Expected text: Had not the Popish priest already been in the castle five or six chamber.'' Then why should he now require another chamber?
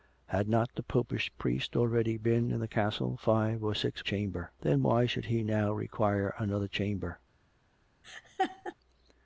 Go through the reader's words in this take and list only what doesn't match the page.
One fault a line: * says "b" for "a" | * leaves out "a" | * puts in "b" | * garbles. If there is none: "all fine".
all fine